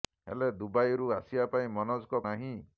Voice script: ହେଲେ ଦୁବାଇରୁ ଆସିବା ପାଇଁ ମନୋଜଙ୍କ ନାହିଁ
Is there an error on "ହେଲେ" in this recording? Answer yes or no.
no